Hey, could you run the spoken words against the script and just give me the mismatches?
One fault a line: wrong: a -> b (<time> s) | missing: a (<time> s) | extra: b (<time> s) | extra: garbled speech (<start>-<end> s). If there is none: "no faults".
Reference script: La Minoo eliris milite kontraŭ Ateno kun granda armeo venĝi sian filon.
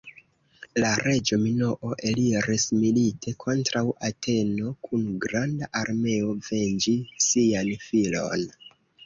extra: reĝo (1.1 s)